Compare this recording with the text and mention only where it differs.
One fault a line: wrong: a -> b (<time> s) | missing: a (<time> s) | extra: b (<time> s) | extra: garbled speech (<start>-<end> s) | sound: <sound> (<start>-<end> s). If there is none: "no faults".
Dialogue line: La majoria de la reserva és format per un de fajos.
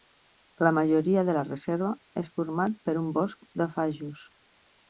extra: bosc (3.2 s)